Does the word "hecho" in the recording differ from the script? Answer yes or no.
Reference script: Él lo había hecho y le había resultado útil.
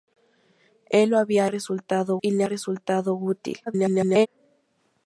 yes